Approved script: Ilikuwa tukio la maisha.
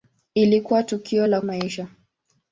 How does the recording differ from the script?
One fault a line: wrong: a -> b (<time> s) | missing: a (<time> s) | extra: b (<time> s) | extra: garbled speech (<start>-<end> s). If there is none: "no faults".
no faults